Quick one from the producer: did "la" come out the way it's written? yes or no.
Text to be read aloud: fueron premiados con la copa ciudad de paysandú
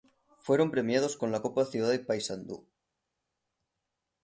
yes